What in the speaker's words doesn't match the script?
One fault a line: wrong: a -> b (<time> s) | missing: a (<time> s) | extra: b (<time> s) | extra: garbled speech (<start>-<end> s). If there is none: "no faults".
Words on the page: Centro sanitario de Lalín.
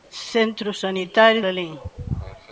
missing: de (1.4 s)